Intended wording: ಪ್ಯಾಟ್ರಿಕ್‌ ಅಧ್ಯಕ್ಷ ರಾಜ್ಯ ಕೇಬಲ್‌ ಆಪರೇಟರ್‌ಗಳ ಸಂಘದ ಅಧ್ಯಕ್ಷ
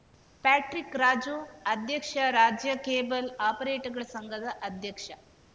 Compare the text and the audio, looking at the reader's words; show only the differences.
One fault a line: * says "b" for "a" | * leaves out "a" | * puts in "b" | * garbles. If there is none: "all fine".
* puts in "ರಾಜು"